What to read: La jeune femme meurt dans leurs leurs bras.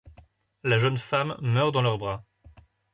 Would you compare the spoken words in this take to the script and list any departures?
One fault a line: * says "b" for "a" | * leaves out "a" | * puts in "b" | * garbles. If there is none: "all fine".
* leaves out "leurs"